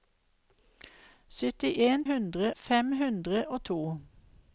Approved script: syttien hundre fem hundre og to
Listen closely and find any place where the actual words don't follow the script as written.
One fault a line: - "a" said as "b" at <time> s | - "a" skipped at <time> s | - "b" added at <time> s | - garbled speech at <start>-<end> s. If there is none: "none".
none